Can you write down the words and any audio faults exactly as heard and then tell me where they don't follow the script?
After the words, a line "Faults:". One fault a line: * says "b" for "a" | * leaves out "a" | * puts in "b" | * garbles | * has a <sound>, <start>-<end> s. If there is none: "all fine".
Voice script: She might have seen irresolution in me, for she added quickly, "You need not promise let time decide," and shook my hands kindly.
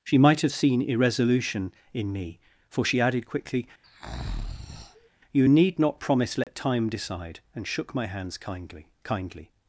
She might have seen irresolution in me, for she added quickly, "You need not promise let time decide," and shook my hands kindly kindly.
Faults:
* has a breath, 3.8-5.1 s
* has a dropout, 6.4-6.5 s
* puts in "kindly"